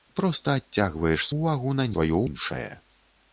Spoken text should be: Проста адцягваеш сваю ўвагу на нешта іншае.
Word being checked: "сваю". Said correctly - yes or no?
no